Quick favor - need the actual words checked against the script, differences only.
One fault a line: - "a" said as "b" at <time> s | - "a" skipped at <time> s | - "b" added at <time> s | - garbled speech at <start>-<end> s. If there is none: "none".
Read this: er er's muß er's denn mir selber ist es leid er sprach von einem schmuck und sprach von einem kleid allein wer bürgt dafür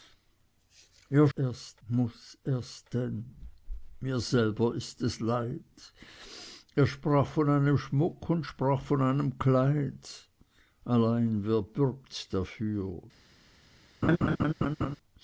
none